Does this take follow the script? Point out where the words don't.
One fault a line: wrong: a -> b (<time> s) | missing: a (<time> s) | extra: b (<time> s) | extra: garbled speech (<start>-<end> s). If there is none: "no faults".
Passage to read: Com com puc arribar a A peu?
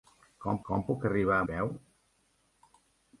no faults